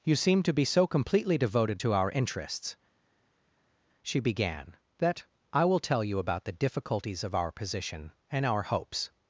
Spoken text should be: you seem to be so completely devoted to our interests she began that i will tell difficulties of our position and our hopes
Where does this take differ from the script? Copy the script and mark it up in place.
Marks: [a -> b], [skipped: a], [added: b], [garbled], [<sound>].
you seem to be so completely devoted to our interests she began that i will tell [added: you about the] difficulties of our position and our hopes